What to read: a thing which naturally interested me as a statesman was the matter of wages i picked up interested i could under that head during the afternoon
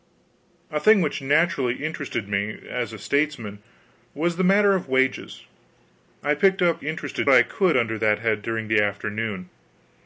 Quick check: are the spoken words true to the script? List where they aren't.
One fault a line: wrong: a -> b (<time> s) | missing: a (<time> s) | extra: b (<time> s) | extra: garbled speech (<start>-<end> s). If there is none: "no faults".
no faults